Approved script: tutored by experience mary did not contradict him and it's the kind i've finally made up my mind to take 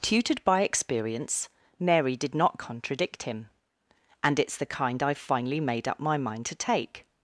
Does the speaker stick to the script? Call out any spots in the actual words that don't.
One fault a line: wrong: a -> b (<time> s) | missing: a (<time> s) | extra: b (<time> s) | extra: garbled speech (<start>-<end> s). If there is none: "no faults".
no faults